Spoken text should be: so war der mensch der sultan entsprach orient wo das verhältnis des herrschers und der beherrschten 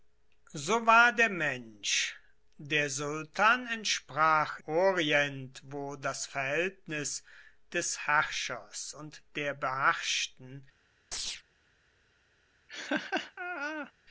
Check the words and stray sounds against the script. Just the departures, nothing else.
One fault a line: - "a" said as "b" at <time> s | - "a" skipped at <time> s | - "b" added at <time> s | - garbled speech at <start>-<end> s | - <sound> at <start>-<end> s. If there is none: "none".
- chirp at 11.1-11.4 s
- laugh at 12.7-13.9 s